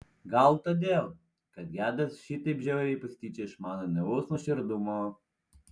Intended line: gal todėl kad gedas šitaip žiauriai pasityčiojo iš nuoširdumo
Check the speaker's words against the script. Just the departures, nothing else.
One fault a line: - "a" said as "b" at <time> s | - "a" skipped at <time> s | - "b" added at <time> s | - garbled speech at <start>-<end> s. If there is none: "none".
- "mano naivaus" added at 3.7 s